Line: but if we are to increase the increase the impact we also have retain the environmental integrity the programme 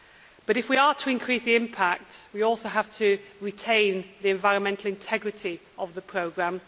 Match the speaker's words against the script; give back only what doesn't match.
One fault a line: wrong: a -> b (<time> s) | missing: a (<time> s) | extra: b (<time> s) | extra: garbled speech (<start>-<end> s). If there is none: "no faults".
missing: increase the (1.5 s)
extra: to (3.0 s)
extra: of (5.8 s)